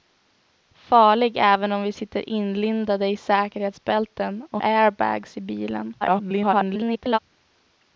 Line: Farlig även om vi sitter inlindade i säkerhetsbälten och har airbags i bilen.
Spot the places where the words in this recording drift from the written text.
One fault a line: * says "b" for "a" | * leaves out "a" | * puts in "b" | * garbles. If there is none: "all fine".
* leaves out "har"
* garbles